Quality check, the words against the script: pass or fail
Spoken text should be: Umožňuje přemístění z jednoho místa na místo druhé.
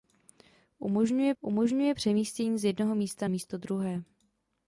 fail